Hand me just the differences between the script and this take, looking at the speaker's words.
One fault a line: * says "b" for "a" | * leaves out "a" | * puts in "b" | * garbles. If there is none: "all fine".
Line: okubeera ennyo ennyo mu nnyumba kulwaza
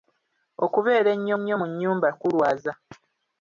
all fine